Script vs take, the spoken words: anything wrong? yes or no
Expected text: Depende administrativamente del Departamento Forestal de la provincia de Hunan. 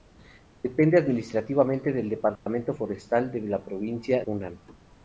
yes